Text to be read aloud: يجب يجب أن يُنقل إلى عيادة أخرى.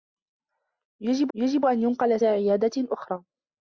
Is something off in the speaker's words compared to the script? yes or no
no